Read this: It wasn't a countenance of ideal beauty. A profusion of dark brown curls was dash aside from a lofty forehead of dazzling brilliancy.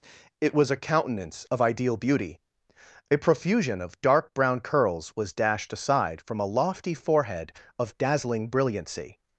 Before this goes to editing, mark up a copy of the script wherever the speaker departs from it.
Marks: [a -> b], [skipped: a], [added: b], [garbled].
It [wasn't -> was] a countenance of ideal beauty. A profusion of dark brown curls was [dash -> dashed] aside from a lofty forehead of dazzling brilliancy.